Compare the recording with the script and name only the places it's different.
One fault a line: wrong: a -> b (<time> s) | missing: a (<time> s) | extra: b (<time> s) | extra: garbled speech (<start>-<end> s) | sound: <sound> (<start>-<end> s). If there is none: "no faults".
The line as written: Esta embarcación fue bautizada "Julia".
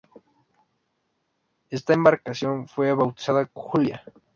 no faults